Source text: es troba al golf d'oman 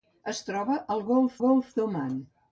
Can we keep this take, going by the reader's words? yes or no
no